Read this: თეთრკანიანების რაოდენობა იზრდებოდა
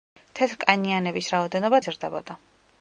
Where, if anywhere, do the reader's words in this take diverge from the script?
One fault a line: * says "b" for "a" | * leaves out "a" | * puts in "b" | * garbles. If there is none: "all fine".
all fine